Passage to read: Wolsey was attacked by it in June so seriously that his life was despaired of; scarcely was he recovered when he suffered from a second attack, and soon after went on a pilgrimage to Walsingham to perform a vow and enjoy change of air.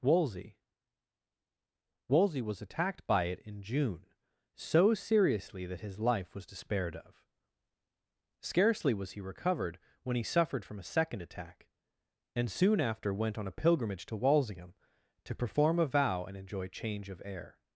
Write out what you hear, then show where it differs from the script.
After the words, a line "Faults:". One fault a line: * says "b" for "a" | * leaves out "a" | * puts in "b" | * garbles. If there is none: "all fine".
Wolsey wolsey was attacked by it in June so seriously that his life was despaired of; scarcely was he recovered when he suffered from a second attack, and soon after went on a pilgrimage to Walsingham to perform a vow and enjoy change of air.
Faults:
* puts in "wolsey"